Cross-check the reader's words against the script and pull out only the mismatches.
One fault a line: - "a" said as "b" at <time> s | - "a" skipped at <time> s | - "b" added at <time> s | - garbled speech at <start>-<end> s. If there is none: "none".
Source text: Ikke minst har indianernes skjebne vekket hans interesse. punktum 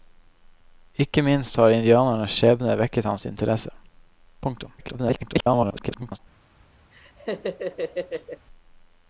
- garbled speech at 4.8-6.2 s